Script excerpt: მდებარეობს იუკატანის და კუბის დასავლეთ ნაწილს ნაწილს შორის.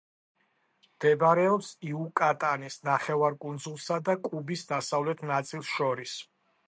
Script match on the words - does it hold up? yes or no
no